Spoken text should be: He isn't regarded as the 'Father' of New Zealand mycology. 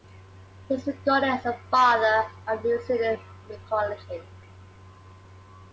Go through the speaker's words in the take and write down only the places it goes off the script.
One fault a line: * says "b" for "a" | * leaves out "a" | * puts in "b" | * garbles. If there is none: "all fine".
* says "is" for "isn't"